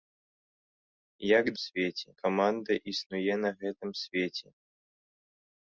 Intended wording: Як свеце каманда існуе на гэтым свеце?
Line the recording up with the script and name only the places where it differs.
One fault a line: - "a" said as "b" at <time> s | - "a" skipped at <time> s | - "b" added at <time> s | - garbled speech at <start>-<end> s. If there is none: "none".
none